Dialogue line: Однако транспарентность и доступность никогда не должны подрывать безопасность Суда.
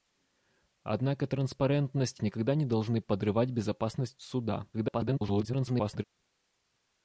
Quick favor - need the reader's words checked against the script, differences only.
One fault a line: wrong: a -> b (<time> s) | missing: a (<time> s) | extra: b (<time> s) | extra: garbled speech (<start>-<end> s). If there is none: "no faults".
missing: и доступность (2.2 s)
extra: garbled speech (4.7-6.0 s)